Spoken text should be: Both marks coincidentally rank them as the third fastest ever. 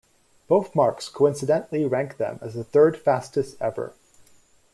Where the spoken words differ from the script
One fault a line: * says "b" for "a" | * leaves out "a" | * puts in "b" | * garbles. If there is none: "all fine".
all fine